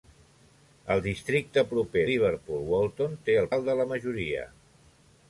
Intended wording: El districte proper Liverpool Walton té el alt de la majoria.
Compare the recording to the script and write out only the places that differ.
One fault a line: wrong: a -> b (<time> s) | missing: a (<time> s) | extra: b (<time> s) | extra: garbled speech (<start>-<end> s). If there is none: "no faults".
no faults